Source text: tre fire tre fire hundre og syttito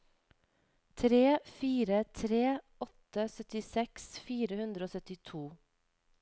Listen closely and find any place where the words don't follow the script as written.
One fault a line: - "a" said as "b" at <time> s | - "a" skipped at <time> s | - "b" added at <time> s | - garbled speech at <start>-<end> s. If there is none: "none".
- "åtte syttiseks" added at 2.9 s